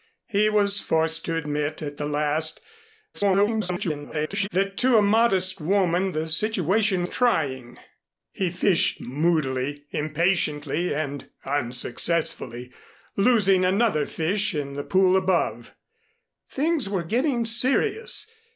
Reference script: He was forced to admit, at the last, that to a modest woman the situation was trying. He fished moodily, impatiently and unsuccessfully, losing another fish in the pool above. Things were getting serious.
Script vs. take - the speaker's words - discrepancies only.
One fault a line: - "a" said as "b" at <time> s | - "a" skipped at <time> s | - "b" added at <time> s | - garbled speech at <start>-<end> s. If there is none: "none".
- garbled speech at 3.1-4.5 s
- "was" skipped at 7.1 s